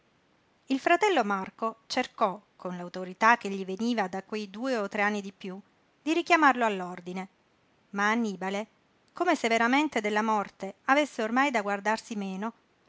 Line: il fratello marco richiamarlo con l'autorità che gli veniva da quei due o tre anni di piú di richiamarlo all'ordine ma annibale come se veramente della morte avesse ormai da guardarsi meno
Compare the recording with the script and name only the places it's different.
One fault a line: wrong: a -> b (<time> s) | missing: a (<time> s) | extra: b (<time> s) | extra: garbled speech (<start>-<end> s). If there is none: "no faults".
wrong: richiamarlo -> cercò (1.9 s)